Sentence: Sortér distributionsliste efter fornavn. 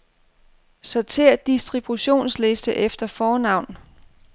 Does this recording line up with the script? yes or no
yes